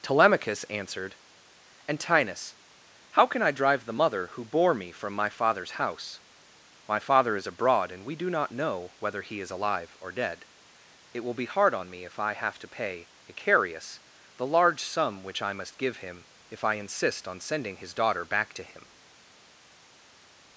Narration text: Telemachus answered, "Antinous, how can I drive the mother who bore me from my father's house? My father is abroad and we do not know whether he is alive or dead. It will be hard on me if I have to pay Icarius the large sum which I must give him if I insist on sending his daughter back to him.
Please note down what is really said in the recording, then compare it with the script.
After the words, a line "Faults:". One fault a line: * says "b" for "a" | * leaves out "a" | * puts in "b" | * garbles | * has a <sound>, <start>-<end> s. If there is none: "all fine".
Telemachus answered, "Antinous, how can I drive the mother who bore me from my father's house? My father is abroad and we do not know whether he is alive or dead. It will be hard on me if I have to pay Icarius the large sum which I must give him if I insist on sending his daughter back to him.
Faults:
all fine